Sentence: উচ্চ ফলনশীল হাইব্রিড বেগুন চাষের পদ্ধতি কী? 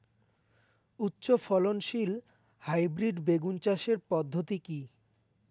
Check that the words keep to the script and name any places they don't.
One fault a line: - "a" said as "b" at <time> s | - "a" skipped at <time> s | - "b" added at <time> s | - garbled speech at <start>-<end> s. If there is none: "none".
none